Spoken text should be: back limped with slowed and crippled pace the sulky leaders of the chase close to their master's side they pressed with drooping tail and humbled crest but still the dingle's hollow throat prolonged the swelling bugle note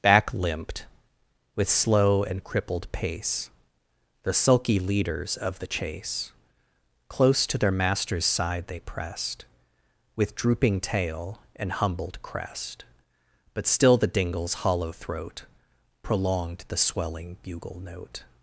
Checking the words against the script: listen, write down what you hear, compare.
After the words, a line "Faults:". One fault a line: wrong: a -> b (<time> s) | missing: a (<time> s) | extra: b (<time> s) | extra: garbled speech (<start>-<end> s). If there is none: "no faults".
back limped with slow and crippled pace the sulky leaders of the chase close to their master's side they pressed with drooping tail and humbled crest but still the dingle's hollow throat prolonged the swelling bugle note
Faults:
wrong: slowed -> slow (1.7 s)